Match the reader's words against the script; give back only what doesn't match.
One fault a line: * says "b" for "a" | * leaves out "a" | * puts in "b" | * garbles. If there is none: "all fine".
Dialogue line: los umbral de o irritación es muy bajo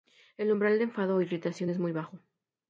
* says "el" for "los"
* puts in "enfado"